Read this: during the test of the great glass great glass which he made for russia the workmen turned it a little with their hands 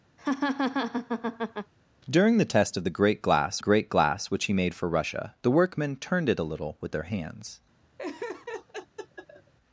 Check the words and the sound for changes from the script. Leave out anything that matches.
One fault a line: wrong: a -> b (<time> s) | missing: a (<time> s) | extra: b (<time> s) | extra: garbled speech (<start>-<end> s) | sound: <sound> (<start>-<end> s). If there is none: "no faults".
sound: laugh (0.2-1.7 s)
sound: laugh (8.0-9.5 s)